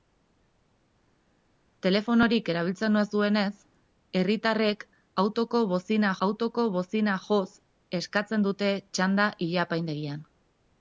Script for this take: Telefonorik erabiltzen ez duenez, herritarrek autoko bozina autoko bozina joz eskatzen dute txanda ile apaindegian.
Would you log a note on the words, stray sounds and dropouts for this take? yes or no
no